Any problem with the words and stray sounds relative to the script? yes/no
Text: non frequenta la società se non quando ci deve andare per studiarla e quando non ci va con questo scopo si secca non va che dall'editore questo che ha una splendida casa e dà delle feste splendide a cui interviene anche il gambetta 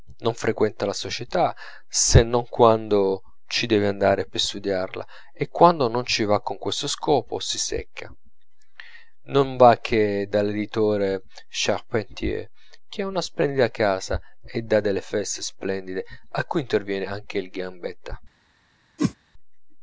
yes